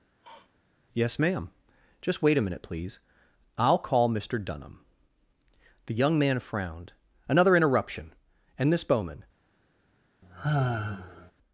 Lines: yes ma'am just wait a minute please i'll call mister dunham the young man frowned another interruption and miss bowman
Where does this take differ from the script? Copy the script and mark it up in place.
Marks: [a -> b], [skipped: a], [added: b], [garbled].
yes ma'am just wait a minute please i'll call mister dunham the young man frowned another interruption and miss bowman